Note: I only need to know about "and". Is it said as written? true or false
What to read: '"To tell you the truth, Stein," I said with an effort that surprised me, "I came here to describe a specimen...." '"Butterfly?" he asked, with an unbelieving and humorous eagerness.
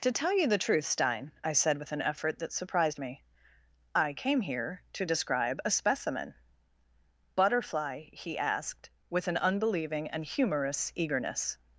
true